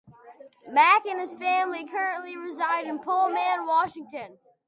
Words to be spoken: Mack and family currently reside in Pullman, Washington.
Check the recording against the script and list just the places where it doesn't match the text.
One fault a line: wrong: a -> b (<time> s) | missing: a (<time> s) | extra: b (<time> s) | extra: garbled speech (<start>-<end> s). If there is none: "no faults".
extra: his (1.2 s)